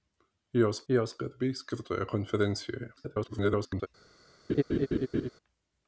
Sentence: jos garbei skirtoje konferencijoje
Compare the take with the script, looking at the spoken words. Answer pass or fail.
fail